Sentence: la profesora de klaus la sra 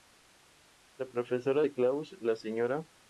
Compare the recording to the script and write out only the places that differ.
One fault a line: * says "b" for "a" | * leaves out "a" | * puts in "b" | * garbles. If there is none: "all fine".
all fine